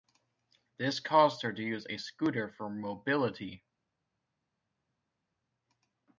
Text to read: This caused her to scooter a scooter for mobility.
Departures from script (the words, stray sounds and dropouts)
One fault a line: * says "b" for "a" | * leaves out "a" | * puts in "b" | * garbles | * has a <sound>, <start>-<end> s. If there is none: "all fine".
* says "use" for "scooter"